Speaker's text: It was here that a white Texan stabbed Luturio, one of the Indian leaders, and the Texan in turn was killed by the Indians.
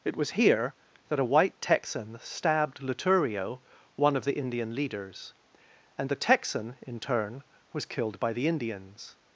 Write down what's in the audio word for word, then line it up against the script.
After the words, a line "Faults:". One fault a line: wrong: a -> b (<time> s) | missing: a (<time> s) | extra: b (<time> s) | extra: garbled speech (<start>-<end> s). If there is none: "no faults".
It was here that a white Texan stabbed Luturio, one of the Indian leaders, and the Texan in turn was killed by the Indians.
Faults:
no faults